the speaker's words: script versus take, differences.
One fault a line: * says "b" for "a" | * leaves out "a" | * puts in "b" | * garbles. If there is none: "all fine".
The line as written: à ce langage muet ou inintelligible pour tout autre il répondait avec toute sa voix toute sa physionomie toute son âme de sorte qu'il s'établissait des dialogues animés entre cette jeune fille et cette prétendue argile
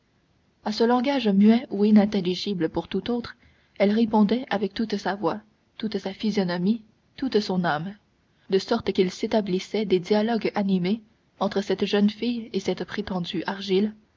* says "elle" for "il"